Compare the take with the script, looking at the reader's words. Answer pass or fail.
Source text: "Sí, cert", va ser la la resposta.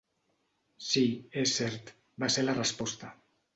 fail